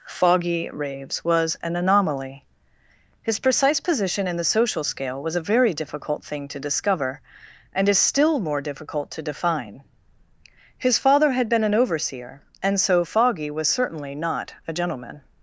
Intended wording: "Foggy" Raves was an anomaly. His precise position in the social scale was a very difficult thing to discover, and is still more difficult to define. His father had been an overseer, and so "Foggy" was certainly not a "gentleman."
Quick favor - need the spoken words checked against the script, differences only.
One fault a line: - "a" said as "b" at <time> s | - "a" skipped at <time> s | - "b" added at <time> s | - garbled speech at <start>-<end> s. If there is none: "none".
none